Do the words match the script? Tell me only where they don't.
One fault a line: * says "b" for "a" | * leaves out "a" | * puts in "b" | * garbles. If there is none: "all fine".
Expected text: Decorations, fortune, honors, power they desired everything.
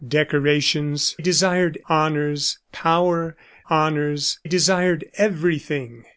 * says "desired" for "fortune"
* says "honors" for "they"